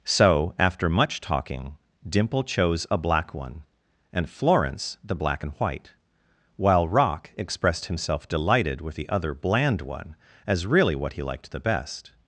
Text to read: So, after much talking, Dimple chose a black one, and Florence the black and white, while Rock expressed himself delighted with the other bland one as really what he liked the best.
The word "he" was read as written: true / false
true